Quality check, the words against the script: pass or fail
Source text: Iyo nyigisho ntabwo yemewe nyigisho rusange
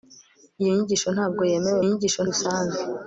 pass